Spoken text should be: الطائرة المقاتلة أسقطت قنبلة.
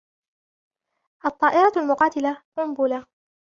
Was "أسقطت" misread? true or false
true